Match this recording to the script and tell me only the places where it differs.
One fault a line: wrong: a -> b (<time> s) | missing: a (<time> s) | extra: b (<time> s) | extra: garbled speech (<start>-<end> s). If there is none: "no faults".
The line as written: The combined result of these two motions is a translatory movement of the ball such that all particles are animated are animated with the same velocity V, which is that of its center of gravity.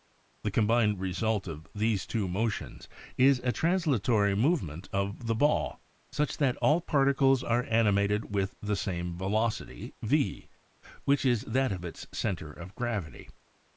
missing: are animated (8.3 s)